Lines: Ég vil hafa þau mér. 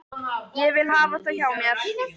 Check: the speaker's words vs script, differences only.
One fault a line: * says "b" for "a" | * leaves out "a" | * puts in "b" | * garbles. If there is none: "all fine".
* puts in "hjá"